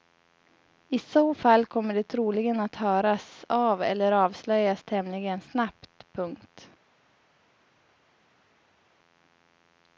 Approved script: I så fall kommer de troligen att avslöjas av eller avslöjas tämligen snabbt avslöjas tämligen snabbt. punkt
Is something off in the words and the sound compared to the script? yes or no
yes